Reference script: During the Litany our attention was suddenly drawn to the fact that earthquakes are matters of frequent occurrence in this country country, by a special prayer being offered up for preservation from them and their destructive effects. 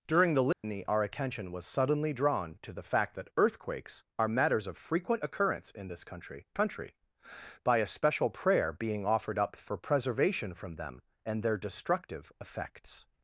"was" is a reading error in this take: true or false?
false